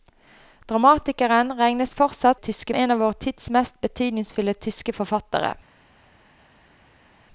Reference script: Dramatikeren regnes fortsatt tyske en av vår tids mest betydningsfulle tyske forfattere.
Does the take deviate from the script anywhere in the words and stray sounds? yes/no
no